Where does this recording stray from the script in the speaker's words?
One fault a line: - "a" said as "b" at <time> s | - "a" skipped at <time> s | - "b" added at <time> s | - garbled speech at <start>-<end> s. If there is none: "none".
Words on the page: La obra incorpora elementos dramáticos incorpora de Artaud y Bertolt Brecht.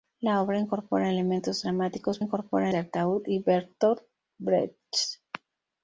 none